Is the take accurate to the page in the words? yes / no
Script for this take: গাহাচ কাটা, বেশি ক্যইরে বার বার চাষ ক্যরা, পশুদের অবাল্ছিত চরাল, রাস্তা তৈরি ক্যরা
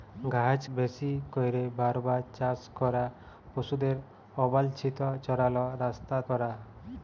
no